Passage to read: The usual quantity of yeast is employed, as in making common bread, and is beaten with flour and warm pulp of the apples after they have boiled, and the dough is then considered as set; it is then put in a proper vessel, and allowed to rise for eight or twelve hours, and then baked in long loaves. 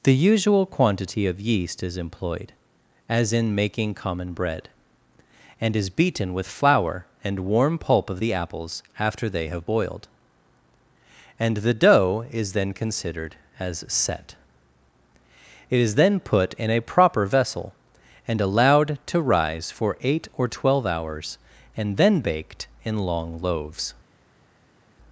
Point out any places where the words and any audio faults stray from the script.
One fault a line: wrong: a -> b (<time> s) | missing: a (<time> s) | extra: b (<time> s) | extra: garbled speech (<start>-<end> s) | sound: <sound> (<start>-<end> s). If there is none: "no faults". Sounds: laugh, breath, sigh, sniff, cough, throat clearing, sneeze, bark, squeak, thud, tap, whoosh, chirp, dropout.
no faults